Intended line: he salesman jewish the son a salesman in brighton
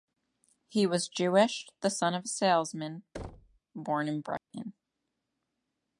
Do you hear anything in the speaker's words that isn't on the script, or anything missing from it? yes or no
yes